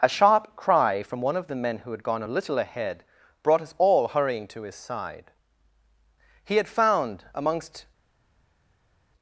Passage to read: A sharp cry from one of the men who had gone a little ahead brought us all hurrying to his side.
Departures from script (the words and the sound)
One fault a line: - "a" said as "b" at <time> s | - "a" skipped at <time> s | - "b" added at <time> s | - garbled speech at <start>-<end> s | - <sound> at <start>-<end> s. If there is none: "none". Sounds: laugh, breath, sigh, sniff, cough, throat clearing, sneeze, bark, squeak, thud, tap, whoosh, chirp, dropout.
- "He had found amongst" added at 6.4 s